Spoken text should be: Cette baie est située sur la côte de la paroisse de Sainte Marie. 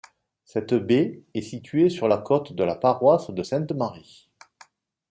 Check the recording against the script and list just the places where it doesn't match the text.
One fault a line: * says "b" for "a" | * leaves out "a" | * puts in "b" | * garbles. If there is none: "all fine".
all fine